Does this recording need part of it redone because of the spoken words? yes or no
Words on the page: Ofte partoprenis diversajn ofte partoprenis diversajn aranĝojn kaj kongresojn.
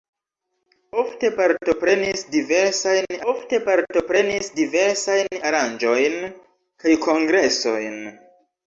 no